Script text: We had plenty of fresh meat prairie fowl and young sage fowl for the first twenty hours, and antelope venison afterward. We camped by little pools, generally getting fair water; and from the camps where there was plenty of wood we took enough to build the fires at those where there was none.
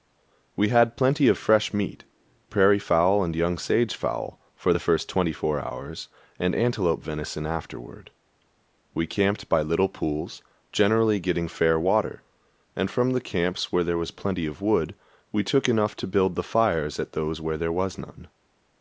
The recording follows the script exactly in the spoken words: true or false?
false